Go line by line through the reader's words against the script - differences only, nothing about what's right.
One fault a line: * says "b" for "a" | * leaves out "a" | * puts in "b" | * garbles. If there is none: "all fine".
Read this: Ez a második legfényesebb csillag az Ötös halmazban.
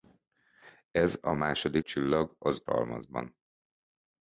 * leaves out "legfényesebb"
* leaves out "Ötös"